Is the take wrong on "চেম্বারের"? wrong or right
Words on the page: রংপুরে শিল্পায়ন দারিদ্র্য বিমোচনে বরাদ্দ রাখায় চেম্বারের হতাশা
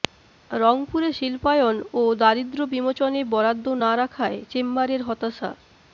right